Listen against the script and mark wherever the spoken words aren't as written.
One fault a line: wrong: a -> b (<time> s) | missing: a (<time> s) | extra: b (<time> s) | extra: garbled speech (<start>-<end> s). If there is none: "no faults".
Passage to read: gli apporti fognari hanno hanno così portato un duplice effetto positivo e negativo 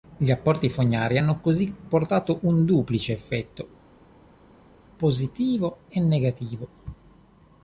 missing: hanno (1.4 s)